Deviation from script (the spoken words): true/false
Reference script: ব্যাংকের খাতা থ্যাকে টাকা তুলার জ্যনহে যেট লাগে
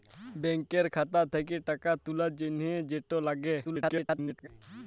true